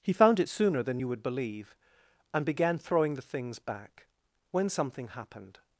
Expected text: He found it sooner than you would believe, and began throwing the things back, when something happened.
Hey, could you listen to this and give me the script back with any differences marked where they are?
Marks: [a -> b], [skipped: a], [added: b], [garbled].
He found it sooner than you would believe, and began throwing the things back, when something happened.